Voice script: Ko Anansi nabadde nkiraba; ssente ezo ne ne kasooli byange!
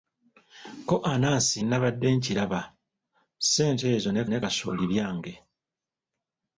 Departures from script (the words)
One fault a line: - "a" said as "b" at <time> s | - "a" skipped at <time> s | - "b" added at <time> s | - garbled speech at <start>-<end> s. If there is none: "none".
none